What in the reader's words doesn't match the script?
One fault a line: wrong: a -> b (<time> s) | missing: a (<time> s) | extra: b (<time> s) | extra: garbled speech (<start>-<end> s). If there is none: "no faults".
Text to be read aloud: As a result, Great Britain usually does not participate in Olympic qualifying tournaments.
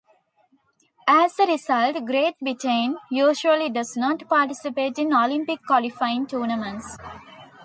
no faults